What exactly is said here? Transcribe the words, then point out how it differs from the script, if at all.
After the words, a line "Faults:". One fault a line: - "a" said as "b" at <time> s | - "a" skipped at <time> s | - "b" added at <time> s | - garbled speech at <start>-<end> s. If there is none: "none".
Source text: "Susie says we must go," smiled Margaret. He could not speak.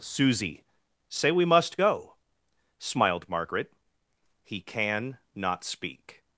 "Susie say we must go," smiled Margaret. He can not speak.
Faults:
- "says" said as "say" at 1.1 s
- "could" said as "can" at 4.6 s